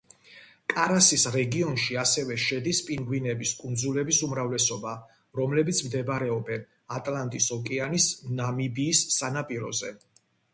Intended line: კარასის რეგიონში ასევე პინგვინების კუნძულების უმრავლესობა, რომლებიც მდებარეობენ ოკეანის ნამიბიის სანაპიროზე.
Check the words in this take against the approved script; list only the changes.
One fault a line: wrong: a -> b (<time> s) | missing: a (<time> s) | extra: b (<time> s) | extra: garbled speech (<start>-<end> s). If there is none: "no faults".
extra: შედის (2.4 s)
extra: ატლანტის (7.0 s)